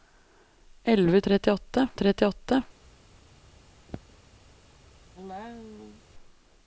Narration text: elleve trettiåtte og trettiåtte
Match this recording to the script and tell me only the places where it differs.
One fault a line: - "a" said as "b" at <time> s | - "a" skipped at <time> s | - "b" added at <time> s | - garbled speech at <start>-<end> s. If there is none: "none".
none